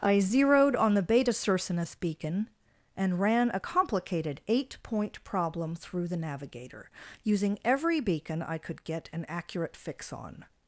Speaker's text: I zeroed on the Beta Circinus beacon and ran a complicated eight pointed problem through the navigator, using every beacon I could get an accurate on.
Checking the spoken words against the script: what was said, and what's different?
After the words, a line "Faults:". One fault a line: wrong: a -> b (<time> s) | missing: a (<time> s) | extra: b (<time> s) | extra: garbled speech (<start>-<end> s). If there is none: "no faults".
I zeroed on the Beta Circinus beacon and ran a complicated eight point problem through the navigator, using every beacon I could get an accurate fix on.
Faults:
wrong: pointed -> point (4.8 s)
extra: fix (9.7 s)